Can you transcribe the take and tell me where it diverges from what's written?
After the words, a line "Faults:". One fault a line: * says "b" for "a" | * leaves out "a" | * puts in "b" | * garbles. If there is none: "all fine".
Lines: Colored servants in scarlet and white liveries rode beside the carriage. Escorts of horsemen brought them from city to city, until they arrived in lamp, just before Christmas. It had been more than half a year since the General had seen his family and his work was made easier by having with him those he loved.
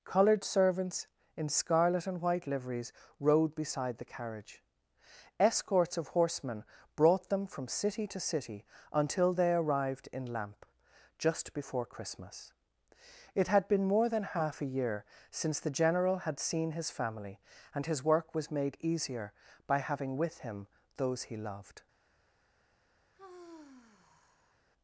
Colored servants in scarlet and white liveries rode beside the carriage. Escorts of horsemen brought them from city to city, until they arrived in lamp, just before Christmas. It had been more than half a year since the General had seen his family and his work was made easier by having with him those he loved.
Faults:
all fine